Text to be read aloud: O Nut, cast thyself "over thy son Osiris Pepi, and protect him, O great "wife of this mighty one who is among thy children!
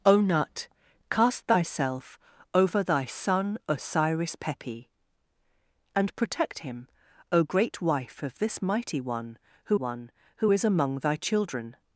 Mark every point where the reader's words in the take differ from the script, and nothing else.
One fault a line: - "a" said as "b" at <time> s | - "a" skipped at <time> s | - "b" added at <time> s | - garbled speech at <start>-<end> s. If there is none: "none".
- "one who" added at 9.7 s